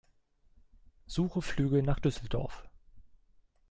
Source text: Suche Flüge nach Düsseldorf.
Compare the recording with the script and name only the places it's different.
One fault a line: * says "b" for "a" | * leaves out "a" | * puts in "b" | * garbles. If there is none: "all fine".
all fine